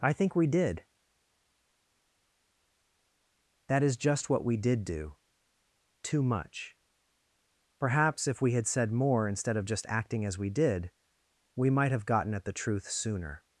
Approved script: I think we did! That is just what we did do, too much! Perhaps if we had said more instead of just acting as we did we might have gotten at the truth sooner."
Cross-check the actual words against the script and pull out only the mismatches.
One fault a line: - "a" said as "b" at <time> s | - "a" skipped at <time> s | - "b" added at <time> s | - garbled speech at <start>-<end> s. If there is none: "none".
none